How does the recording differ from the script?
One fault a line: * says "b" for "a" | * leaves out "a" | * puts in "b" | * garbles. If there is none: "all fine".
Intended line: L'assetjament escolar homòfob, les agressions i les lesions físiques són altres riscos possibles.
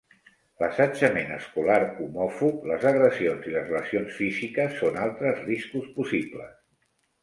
all fine